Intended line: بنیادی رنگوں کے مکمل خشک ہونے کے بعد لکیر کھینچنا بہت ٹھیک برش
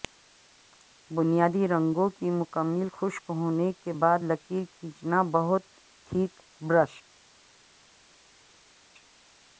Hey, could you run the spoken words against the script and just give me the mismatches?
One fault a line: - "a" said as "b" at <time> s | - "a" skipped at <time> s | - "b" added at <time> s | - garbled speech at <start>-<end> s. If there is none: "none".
- "کے" said as "کی" at 2.2 s